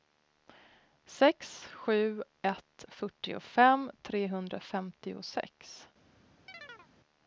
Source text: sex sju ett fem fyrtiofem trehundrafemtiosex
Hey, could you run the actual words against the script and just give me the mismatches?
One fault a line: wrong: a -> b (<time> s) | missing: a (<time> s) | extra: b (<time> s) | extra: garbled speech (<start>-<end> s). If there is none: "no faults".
missing: fem (2.9 s)